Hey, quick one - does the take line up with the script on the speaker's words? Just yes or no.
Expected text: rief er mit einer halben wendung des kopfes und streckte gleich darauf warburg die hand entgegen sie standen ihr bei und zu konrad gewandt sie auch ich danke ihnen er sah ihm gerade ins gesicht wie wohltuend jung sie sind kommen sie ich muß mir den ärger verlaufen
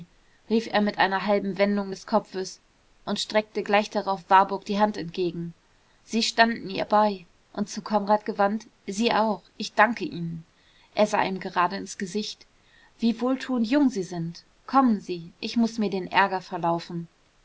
yes